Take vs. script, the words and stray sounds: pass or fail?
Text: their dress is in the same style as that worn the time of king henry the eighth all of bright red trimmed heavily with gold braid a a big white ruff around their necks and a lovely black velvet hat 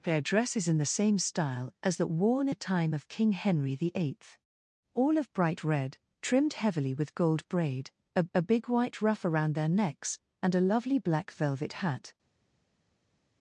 pass